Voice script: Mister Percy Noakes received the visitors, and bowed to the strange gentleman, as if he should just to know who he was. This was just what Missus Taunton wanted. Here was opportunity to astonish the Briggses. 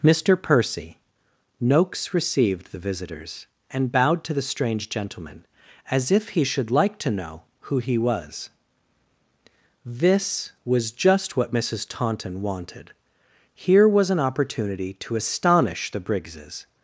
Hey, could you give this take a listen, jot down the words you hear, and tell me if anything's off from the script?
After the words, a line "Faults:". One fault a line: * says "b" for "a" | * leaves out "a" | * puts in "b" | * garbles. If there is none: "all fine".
Mister Percy Noakes received the visitors, and bowed to the strange gentleman, as if he should like to know who he was. This was just what Missus Taunton wanted. Here was an opportunity to astonish the Briggses.
Faults:
* says "like" for "just"
* puts in "an"